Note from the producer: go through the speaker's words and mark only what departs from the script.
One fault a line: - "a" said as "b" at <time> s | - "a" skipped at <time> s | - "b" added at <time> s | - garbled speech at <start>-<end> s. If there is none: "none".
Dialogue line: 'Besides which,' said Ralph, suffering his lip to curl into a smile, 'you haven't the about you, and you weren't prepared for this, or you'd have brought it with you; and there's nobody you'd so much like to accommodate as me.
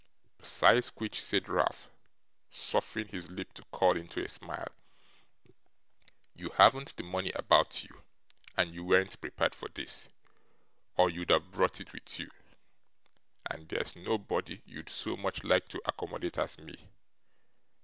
- "money" added at 7.0 s